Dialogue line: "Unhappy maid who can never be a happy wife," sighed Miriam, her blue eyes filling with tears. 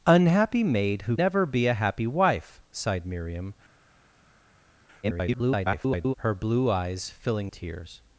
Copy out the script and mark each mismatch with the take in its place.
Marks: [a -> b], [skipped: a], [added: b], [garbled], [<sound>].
"Unhappy maid who [skipped: can] never be a happy wife," sighed Miriam, [garbled] her blue eyes filling [skipped: with] tears.